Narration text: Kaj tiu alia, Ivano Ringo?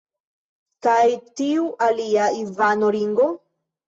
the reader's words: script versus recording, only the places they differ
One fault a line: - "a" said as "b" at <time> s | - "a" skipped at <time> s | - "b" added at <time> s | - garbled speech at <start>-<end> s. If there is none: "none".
none